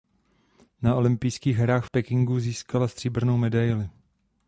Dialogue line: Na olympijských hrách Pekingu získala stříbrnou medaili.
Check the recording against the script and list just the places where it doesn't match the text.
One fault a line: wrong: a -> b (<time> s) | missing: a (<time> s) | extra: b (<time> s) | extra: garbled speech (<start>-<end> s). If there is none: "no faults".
no faults